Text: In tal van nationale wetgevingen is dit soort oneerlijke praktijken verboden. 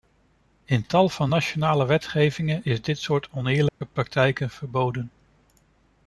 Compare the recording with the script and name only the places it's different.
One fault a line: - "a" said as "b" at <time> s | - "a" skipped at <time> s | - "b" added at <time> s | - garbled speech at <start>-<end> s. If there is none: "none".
none